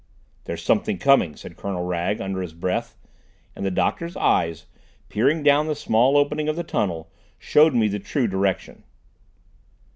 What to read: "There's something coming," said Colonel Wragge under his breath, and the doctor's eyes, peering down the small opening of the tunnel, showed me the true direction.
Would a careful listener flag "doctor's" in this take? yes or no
no